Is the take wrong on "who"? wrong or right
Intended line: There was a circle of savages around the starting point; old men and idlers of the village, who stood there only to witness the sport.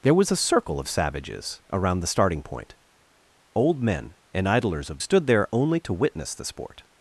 wrong